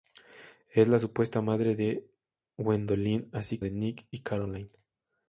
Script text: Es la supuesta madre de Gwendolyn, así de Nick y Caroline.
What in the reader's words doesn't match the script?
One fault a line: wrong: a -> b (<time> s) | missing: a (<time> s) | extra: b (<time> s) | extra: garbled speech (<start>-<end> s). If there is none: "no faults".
no faults